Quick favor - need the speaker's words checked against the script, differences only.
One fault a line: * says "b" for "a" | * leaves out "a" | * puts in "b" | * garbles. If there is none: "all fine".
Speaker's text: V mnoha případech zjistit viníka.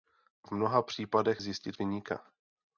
all fine